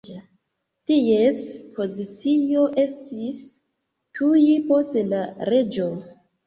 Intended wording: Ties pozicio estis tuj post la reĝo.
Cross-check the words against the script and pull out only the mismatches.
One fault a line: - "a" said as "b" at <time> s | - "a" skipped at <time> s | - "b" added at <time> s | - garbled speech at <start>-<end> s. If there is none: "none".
none